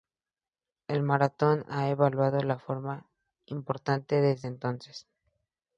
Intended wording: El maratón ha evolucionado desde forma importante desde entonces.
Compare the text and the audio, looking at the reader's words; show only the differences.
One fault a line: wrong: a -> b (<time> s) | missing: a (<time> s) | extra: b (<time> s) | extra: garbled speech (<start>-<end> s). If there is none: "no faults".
wrong: desde -> de (2.4 s)